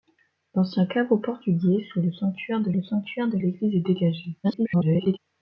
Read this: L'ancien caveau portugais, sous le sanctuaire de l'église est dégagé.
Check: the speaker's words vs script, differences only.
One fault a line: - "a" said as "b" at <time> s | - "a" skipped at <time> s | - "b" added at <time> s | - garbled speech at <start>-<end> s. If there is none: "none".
- "le sanctuaire de" added at 2.7 s
- garbled speech at 4.4-5.2 s